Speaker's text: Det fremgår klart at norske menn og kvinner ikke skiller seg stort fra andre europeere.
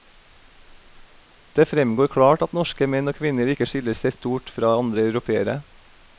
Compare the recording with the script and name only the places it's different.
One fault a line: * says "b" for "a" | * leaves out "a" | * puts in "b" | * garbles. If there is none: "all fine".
all fine